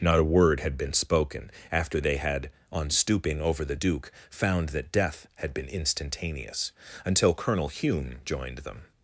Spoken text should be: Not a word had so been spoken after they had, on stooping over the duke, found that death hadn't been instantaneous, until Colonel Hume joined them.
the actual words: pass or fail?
fail